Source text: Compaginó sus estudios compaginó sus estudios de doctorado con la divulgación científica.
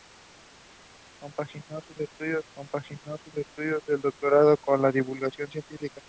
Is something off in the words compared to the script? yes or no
no